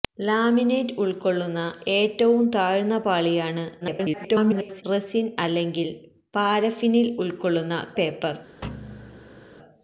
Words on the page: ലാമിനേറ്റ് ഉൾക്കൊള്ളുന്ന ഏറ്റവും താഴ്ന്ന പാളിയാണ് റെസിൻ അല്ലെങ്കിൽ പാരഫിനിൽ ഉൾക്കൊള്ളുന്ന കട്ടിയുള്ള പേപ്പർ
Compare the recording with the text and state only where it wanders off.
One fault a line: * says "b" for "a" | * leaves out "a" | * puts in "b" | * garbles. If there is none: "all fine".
* garbles
* leaves out "കട്ടിയുള്ള"